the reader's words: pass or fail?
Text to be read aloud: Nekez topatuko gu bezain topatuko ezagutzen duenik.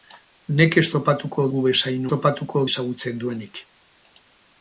pass